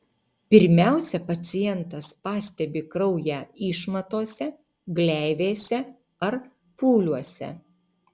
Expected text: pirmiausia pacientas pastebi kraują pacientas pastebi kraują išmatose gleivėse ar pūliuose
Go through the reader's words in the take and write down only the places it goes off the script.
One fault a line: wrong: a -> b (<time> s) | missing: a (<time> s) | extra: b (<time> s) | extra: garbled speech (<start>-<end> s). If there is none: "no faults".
missing: pacientas pastebi kraują (3.4 s)